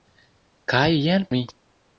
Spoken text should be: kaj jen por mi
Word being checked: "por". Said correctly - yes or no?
no